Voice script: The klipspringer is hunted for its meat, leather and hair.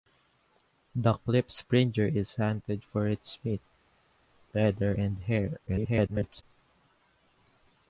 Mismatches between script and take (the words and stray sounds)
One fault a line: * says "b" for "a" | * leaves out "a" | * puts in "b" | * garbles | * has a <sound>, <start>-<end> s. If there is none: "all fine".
* garbles